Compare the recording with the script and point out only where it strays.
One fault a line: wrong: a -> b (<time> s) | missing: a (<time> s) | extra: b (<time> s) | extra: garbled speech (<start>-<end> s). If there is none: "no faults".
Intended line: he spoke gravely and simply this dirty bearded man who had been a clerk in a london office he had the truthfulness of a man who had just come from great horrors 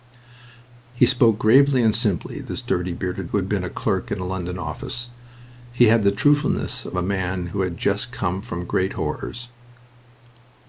missing: man (3.3 s)